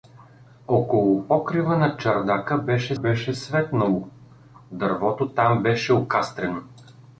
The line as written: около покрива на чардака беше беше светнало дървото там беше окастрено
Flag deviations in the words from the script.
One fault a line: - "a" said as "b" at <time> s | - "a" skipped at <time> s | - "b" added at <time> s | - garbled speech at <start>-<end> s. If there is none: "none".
none